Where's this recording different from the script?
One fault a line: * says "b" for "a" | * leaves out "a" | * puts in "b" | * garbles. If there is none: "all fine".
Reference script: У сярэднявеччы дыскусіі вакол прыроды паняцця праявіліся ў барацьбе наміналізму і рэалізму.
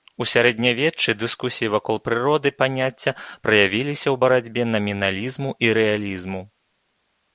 all fine